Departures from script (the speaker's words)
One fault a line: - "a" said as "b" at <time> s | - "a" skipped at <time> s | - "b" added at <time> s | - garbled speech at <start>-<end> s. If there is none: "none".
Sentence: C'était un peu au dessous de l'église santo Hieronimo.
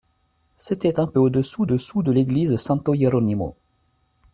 - "dessous" added at 1.6 s